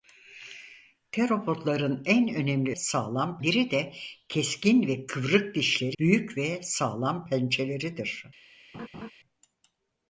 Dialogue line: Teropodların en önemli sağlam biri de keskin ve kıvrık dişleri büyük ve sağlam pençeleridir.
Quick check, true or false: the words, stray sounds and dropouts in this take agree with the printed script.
false